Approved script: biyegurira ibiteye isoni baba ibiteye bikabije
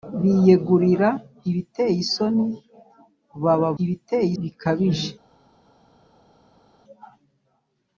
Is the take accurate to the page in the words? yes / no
yes